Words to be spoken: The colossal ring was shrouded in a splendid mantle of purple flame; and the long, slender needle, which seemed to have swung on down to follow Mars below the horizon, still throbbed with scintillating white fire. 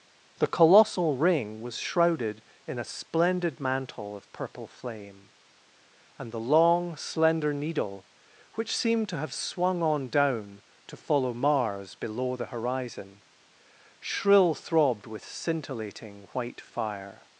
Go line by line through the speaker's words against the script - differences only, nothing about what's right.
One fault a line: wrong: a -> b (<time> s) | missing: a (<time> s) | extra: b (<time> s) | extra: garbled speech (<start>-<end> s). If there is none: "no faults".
wrong: still -> shrill (14.0 s)